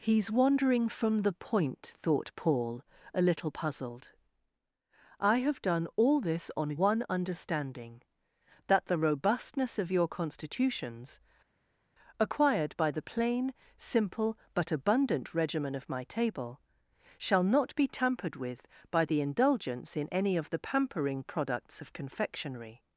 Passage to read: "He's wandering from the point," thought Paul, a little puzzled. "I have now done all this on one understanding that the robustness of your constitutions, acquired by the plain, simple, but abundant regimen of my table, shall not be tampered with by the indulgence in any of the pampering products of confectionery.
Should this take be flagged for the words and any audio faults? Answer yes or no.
yes